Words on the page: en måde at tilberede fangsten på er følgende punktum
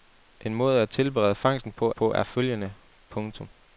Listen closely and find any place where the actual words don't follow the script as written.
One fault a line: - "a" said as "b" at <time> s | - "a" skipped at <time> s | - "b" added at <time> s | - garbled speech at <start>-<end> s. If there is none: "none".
- "på" added at 1.9 s